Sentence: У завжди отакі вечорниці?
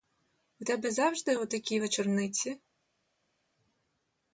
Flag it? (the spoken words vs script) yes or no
yes